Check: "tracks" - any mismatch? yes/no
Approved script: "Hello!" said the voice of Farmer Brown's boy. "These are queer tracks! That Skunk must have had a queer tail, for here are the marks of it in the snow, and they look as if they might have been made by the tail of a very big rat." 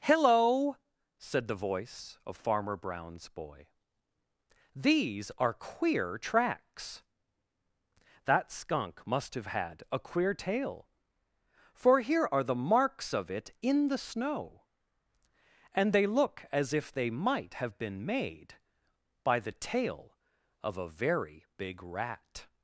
no